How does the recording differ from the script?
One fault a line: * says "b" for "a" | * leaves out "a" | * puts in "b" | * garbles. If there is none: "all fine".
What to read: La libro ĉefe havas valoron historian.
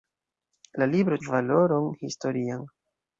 * leaves out "ĉefe havas"